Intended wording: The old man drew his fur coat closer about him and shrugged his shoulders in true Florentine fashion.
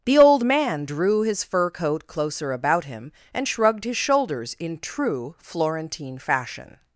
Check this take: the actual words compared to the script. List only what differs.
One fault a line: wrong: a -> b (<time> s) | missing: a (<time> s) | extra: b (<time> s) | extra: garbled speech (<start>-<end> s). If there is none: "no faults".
no faults